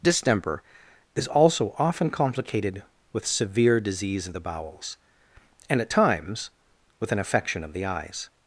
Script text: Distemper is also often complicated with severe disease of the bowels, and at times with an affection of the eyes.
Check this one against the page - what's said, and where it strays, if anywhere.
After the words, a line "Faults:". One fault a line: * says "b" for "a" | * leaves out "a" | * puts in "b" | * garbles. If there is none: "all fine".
Distemper is also often complicated with severe disease of the bowels, and at times with an affection of the eyes.
Faults:
all fine